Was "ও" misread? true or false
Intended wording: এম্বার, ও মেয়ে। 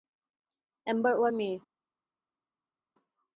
false